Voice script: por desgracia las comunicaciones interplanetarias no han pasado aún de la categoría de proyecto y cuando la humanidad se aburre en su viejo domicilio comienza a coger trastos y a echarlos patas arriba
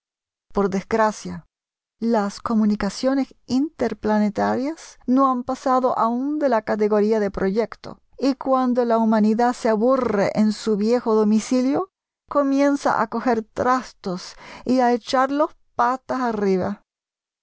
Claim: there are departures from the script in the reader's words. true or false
false